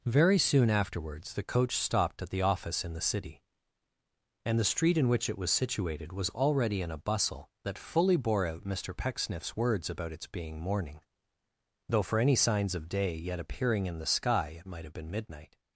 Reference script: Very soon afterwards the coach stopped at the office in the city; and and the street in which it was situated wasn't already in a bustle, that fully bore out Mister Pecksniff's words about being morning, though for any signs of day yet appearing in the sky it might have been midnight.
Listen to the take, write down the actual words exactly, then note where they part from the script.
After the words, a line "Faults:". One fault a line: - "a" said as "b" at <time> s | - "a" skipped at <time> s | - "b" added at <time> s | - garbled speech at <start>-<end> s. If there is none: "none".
Very soon afterwards the coach stopped at the office in the city; and the street in which it was situated was already in a bustle, that fully bore out Mister Pecksniff's words about its being morning, though for any signs of day yet appearing in the sky it might have been midnight.
Faults:
- "and" skipped at 4.6 s
- "wasn't" said as "was" at 6.1 s
- "its" added at 10.1 s